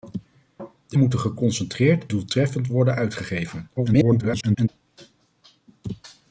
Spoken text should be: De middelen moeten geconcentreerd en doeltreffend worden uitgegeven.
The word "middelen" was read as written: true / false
false